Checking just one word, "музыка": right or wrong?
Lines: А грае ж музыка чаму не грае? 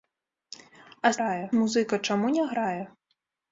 right